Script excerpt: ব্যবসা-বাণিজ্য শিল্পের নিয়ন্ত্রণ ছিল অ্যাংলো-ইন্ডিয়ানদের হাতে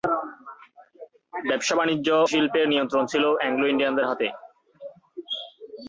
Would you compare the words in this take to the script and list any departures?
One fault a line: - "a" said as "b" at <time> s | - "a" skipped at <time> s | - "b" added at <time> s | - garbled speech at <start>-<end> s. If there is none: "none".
none